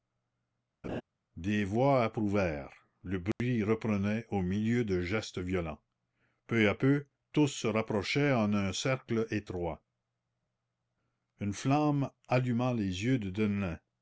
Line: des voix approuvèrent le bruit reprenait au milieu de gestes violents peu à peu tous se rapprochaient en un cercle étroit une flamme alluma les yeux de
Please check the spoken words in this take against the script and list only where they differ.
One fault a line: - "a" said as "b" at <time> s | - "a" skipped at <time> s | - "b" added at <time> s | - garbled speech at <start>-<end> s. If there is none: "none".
none